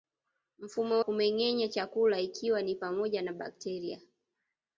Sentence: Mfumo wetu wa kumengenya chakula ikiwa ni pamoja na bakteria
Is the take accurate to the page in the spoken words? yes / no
no